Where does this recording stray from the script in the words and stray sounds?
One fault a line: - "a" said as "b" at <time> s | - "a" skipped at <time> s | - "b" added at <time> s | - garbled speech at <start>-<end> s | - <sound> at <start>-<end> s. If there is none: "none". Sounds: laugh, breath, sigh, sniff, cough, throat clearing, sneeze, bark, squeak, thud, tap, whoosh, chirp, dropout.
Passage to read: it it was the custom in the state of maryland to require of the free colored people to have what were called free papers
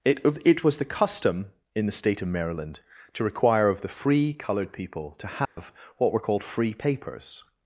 - dropout at 5.5-5.6 s